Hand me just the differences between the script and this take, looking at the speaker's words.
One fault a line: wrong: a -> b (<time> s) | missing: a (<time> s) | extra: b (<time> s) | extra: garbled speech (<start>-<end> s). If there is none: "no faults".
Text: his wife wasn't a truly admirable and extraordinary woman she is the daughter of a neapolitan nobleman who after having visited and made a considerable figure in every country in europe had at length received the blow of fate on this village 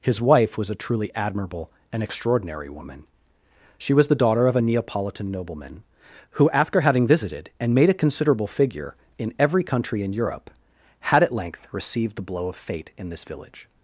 wrong: wasn't -> was (0.6 s)
wrong: is -> was (3.9 s)
wrong: on -> in (13.0 s)